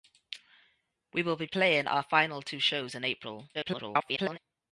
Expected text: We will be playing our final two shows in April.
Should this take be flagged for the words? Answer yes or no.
yes